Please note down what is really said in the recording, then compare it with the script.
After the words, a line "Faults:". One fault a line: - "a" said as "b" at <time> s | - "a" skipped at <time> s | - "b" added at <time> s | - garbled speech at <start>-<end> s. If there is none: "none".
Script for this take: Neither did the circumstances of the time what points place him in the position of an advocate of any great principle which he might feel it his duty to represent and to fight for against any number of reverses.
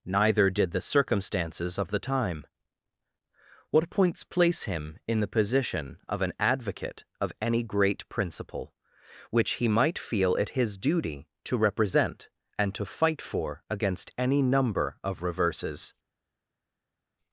Neither did the circumstances of the time what points place him in the position of an advocate of any great principle which he might feel it his duty to represent and to fight for against any number of reverses.
Faults:
none